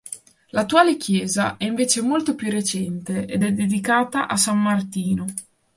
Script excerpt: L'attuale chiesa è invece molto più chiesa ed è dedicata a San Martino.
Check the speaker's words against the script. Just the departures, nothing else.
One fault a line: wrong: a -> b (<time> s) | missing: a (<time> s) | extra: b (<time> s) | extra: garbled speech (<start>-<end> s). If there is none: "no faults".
wrong: chiesa -> recente (2.5 s)